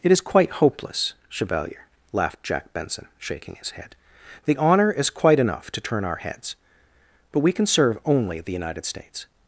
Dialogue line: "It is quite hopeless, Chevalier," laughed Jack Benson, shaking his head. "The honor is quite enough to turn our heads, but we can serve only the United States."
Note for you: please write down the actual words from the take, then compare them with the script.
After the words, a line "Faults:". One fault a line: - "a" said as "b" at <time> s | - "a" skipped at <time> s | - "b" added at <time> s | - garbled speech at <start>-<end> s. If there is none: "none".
"It is quite hopeless, Chevalier," laughed Jack Benson, shaking his head. "The honor is quite enough to turn our heads, but we can serve only the United States."
Faults:
none